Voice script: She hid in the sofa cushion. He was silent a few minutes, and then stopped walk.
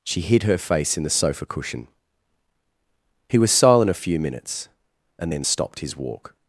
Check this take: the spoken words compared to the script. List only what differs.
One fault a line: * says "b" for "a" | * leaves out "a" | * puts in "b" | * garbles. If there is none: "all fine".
* puts in "her face"
* puts in "his"